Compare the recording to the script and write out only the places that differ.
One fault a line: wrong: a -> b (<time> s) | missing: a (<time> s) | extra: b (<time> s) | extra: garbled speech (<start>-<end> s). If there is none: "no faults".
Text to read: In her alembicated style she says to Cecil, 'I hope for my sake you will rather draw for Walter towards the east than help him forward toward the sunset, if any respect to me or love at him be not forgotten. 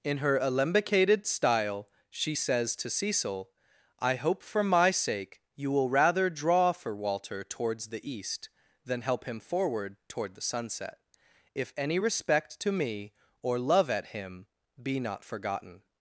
no faults